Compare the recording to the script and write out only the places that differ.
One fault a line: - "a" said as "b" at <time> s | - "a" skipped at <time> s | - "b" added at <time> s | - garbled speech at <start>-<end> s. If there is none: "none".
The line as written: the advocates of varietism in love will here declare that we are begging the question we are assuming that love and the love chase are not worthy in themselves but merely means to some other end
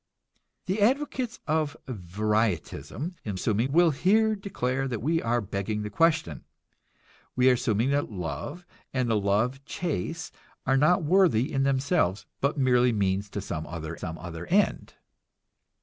- "love" said as "assuming" at 3.4 s
- "some other" added at 13.9 s